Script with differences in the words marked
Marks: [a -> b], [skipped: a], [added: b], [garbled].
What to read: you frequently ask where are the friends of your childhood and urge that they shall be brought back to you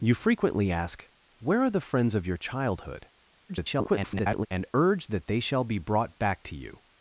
you frequently ask where are the friends of your childhood [garbled] and urge that they shall be brought back to you